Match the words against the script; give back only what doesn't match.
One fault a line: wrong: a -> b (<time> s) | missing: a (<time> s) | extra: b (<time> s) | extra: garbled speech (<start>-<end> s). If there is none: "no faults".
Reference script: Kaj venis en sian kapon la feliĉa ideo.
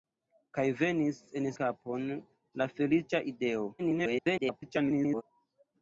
missing: sian (1.5 s)
extra: garbled speech (3.8-5.2 s)